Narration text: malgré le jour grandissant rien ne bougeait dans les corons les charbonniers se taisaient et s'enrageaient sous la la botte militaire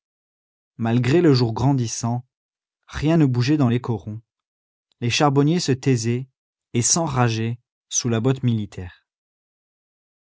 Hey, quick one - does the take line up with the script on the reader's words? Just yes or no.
no